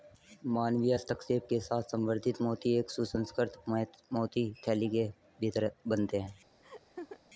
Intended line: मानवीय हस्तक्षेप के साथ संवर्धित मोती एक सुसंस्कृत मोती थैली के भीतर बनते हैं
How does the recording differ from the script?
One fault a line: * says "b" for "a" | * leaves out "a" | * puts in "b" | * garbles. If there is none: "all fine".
all fine